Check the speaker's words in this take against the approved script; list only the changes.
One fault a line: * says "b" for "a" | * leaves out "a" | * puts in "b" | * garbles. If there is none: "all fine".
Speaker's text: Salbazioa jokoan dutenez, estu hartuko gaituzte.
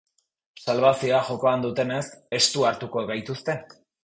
all fine